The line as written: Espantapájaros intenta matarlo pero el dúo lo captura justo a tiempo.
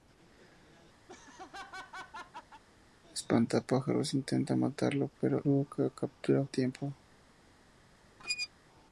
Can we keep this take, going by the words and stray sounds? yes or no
no